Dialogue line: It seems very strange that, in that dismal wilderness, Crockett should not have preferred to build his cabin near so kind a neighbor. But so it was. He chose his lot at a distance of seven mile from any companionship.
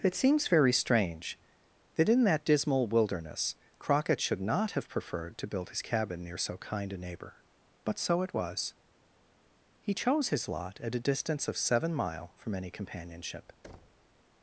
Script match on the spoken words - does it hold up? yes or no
yes